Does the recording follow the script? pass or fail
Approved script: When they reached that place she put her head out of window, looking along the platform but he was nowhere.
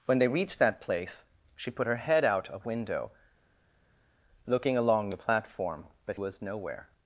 fail